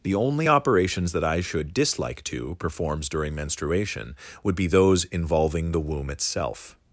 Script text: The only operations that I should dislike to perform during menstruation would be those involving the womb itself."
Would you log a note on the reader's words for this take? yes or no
yes